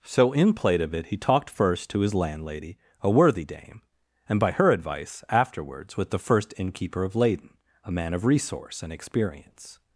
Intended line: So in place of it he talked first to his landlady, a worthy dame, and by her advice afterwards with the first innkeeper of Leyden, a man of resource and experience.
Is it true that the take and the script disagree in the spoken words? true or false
true